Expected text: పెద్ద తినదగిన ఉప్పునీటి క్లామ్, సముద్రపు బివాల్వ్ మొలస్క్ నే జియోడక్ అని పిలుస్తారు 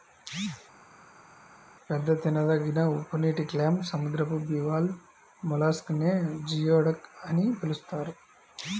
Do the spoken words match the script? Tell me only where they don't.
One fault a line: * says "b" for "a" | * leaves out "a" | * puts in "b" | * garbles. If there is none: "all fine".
all fine